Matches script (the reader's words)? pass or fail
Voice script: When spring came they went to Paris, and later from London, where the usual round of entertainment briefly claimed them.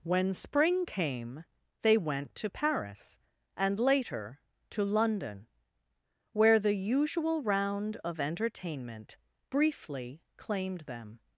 fail